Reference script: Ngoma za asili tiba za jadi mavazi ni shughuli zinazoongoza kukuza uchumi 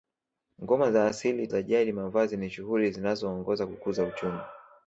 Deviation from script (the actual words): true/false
true